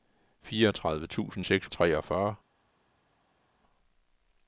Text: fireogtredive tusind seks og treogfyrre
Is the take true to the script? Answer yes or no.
yes